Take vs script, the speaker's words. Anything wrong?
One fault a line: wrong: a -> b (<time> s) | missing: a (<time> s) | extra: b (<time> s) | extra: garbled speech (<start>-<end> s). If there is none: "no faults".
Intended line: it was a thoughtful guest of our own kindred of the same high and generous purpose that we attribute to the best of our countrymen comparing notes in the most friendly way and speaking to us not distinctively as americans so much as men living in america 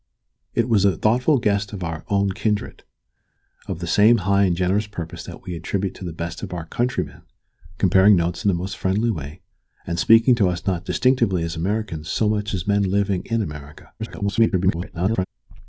extra: garbled speech (14.0-15.3 s)